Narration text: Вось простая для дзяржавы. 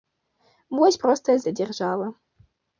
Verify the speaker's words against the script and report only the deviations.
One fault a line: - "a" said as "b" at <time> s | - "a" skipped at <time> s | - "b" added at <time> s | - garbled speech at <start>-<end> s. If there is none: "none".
none